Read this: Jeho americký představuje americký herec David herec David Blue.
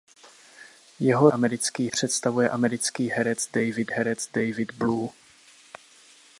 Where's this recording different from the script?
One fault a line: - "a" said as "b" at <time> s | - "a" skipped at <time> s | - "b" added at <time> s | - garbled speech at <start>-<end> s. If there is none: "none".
none